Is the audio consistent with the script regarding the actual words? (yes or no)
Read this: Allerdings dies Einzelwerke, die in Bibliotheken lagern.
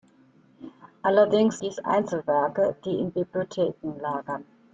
yes